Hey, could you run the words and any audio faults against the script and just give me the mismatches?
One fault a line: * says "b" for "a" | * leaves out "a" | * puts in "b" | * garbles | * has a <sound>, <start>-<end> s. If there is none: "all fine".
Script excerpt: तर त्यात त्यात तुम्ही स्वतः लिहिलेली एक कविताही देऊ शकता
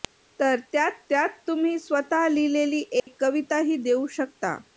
* has a dropout, 3.0-3.1 s